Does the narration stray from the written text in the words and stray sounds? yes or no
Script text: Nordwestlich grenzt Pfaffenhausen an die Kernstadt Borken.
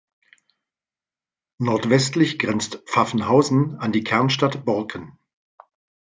no